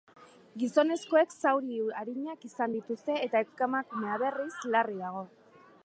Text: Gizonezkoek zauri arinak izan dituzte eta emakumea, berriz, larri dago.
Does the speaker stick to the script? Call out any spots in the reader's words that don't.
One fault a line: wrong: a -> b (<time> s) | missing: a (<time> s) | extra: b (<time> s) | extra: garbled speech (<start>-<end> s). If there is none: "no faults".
no faults